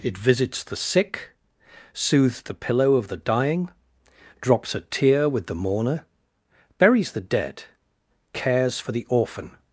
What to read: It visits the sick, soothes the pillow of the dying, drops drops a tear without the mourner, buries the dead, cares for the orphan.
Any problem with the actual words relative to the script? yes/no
yes